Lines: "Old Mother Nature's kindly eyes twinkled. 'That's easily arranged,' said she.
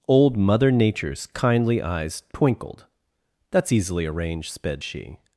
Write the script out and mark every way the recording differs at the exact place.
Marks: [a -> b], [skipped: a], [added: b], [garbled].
"Old Mother Nature's kindly eyes twinkled. 'That's easily arranged,' [said -> sped] she.